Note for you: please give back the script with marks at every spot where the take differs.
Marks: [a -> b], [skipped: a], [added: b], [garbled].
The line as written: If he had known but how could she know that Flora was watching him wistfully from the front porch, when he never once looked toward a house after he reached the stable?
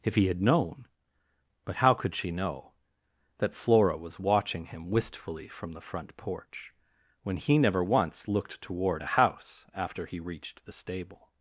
If he had known but how could she know that Flora was watching him wistfully from the front porch, when he never once looked toward a house after he reached the stable?